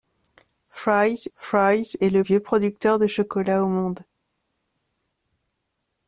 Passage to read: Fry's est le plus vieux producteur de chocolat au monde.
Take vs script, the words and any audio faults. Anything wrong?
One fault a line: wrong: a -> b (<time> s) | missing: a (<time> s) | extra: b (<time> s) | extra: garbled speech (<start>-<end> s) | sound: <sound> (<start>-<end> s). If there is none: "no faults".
extra: fry's (1.3 s)
missing: plus (2.2 s)